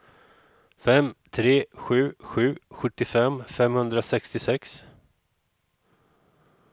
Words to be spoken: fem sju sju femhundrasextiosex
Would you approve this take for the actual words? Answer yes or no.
no